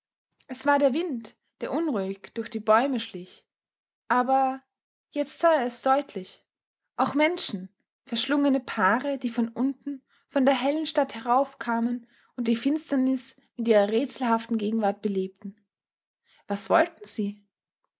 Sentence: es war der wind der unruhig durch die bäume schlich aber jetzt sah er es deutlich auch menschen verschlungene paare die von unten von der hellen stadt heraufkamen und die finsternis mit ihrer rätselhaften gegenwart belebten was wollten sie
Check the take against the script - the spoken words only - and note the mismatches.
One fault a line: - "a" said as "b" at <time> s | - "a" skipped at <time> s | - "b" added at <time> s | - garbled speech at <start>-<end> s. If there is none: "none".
none